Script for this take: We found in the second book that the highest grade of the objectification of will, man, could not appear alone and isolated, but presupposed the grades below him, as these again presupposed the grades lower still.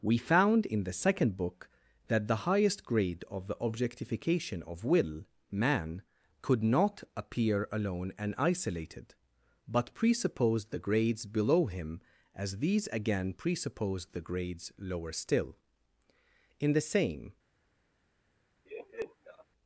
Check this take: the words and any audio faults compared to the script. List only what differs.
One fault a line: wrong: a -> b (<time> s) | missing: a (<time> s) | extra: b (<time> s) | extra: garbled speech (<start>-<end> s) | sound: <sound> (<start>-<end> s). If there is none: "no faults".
extra: In the same (16.6 s)
sound: laugh (18.7-19.5 s)